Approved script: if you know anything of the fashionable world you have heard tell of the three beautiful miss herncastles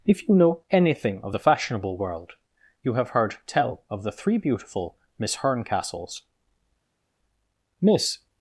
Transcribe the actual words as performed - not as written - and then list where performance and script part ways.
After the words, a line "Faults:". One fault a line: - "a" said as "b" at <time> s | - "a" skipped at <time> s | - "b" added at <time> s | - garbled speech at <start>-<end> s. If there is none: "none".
if you know anything of the fashionable world you have heard tell of the three beautiful miss herncastles miss
Faults:
- "miss" added at 7.8 s